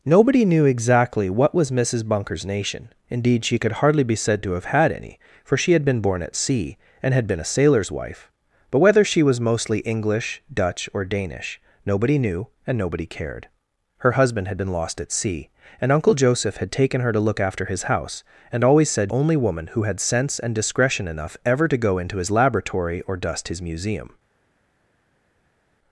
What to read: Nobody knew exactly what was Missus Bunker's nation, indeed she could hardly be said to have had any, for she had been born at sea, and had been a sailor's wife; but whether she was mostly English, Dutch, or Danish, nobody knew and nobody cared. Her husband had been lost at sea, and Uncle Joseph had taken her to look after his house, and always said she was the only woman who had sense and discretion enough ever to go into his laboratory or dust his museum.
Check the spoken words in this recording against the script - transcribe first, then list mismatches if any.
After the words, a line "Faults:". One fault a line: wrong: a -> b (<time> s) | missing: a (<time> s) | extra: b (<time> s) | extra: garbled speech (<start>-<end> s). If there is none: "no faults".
Nobody knew exactly what was Missus Bunker's nation, indeed she could hardly be said to have had any, for she had been born at sea, and had been a sailor's wife; but whether she was mostly English, Dutch, or Danish, nobody knew and nobody cared. Her husband had been lost at sea, and Uncle Joseph had taken her to look after his house, and always said only woman who had sense and discretion enough ever to go into his laboratory or dust his museum.
Faults:
missing: she was the (19.1 s)